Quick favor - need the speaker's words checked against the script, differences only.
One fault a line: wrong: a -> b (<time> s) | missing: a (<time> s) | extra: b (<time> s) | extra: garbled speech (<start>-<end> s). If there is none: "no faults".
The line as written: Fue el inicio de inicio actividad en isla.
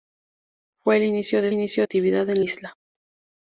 no faults